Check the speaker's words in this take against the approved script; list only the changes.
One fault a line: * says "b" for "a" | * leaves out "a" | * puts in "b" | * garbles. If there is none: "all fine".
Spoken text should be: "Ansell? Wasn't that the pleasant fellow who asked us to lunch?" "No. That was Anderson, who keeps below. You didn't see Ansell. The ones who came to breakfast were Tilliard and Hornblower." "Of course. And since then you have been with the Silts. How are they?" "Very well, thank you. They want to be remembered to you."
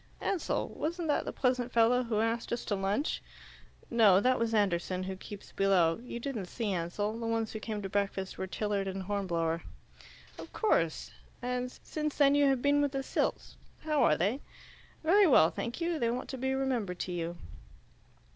all fine